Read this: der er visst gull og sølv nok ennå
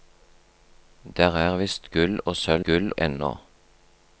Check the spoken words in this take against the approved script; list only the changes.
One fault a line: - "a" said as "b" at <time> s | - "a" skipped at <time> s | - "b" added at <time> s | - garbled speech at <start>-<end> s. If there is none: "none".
- "nok" said as "gull" at 2.6 s